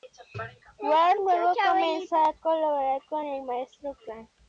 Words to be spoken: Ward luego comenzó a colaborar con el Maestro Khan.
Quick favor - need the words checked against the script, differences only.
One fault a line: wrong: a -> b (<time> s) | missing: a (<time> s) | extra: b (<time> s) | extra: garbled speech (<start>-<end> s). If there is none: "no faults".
no faults